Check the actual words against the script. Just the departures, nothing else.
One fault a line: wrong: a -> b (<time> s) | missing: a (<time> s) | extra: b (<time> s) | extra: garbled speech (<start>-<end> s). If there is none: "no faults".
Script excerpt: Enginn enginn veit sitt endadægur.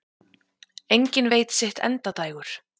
missing: enginn (1.3 s)